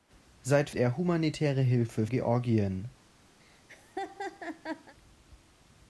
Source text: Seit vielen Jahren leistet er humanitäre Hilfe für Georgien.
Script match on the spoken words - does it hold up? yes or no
no